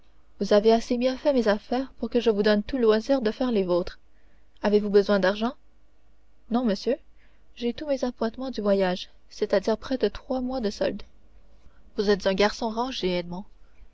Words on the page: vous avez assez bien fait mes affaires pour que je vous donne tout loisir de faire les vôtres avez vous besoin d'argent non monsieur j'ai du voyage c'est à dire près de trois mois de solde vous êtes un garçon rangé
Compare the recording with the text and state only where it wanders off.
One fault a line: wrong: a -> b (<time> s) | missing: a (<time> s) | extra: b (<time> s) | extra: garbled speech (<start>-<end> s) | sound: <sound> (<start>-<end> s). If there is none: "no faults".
extra: tous mes appointements (7.7 s)